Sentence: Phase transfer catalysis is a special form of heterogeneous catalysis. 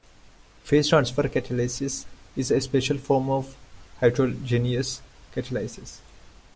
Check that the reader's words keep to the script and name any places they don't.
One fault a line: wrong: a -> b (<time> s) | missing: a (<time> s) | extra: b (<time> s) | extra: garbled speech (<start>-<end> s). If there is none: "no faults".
no faults